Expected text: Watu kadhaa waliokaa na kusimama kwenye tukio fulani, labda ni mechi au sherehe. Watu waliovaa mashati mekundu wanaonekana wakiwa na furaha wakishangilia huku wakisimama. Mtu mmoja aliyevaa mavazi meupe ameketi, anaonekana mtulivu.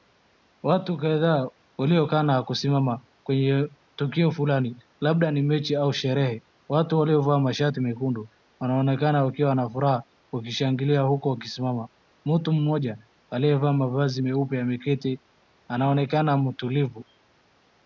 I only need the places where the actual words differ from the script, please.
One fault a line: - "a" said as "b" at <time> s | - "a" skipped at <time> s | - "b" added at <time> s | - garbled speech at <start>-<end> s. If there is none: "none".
none